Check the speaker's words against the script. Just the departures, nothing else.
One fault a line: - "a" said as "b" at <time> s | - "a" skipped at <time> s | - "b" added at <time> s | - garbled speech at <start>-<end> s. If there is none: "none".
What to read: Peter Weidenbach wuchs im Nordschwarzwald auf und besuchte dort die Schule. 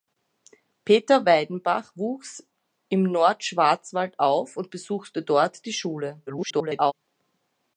- garbled speech at 6.3-6.9 s